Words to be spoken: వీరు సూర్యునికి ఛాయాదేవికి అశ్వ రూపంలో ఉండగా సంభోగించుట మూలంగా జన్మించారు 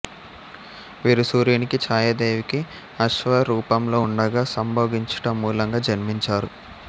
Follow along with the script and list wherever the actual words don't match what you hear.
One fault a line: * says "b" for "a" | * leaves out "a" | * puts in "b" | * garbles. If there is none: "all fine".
all fine